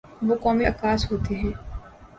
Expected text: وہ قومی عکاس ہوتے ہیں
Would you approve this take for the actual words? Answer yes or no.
yes